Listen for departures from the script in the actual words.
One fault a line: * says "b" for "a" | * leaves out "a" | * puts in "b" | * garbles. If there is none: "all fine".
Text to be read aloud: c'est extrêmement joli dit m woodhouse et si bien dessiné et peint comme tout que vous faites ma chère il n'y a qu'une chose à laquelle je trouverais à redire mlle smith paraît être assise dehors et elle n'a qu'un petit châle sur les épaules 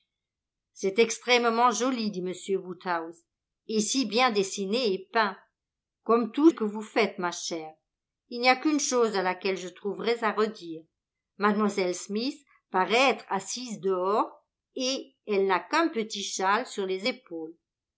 all fine